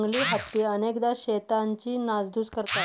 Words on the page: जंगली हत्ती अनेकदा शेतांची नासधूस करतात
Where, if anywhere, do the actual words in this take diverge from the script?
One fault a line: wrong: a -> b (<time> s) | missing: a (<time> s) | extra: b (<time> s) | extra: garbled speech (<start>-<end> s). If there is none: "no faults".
no faults